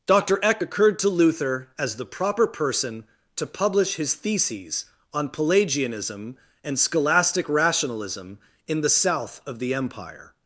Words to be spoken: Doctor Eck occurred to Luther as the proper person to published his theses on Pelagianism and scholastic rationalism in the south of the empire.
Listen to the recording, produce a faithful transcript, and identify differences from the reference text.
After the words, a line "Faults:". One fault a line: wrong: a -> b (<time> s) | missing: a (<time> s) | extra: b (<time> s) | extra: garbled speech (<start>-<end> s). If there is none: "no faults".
Doctor Eck occurred to Luther as the proper person to publish his theses on Pelagianism and scholastic rationalism in the south of the empire.
Faults:
wrong: published -> publish (3.5 s)